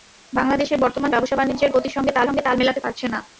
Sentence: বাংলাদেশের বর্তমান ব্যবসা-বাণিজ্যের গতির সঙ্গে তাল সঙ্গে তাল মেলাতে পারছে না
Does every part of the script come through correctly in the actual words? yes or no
yes